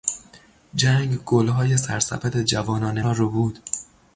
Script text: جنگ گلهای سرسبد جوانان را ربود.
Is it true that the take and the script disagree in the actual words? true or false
false